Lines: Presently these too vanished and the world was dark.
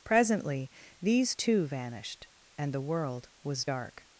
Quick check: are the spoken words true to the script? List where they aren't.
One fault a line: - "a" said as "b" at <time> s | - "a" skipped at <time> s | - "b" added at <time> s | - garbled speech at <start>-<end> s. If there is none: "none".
none